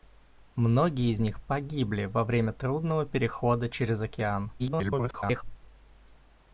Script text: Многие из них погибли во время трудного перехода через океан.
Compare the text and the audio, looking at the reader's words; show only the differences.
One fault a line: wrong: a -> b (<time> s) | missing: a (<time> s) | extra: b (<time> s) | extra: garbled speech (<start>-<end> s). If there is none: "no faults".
extra: garbled speech (4.6-5.4 s)